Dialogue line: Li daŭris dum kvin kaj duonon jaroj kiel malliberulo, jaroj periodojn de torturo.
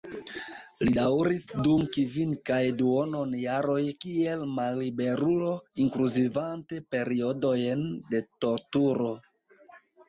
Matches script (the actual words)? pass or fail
fail